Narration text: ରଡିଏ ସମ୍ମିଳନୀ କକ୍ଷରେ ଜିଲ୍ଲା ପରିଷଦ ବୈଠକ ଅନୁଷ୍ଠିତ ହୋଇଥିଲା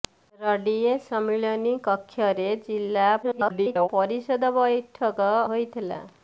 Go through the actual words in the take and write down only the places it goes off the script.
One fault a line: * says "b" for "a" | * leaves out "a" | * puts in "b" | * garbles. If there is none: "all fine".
* garbles
* leaves out "ଅନୁଷ୍ଠିତ"